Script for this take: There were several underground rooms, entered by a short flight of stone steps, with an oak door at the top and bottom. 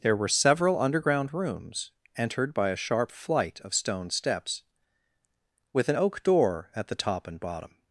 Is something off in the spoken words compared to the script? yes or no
yes